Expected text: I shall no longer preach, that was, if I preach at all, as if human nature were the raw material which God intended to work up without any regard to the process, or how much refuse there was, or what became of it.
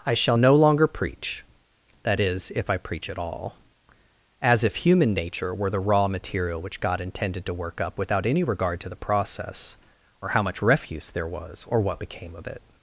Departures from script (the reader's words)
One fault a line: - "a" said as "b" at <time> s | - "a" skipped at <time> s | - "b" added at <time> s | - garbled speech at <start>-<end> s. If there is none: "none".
- "was" said as "is" at 2.2 s